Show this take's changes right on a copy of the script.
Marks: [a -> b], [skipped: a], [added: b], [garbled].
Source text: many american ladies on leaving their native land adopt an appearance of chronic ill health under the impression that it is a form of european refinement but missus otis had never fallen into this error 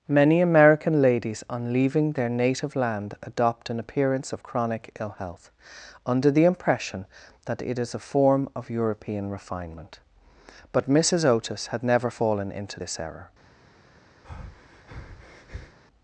many american ladies on leaving their native land adopt an appearance of chronic ill health under the impression that it is a form of european refinement but missus otis had never fallen into this error